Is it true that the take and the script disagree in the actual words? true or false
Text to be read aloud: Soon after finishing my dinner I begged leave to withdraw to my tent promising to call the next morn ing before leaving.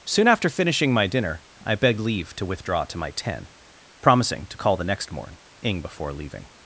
true